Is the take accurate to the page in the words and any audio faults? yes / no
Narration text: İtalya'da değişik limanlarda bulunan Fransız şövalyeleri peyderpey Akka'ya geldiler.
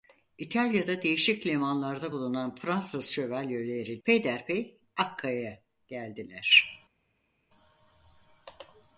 yes